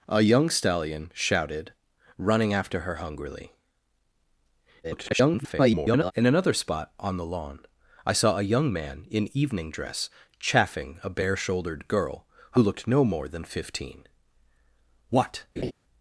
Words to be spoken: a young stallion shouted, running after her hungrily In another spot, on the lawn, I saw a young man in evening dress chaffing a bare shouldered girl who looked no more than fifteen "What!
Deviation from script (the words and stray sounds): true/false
true